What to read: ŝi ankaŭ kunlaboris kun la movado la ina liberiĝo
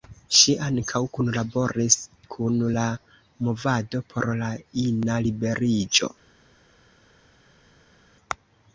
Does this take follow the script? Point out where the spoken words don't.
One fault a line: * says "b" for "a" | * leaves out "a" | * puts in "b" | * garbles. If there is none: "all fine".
* puts in "por"